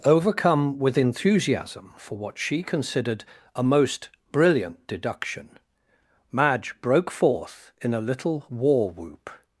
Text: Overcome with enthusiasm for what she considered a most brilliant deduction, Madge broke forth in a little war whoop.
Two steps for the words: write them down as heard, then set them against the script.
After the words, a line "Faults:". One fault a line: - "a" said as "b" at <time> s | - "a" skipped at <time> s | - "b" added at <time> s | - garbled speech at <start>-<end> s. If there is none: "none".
Overcome with enthusiasm for what she considered a most brilliant deduction, Madge broke forth in a little war whoop.
Faults:
none